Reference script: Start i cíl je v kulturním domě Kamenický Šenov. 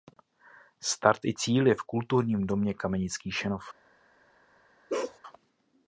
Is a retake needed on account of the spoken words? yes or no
no